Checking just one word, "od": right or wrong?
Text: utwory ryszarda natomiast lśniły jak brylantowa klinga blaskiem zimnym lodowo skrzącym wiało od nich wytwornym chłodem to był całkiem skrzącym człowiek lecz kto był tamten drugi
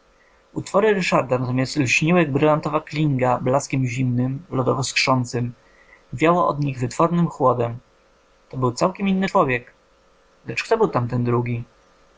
right